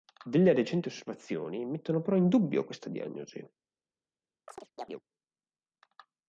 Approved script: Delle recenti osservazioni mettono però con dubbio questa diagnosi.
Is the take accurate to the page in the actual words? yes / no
no